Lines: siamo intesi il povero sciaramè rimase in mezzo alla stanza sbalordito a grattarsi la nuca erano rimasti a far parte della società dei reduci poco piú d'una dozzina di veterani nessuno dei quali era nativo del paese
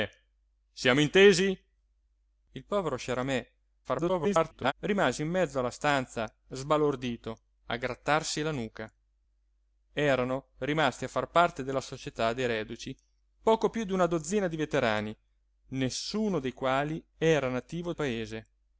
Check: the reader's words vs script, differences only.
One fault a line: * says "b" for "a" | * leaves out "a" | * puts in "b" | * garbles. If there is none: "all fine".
* garbles
* leaves out "del"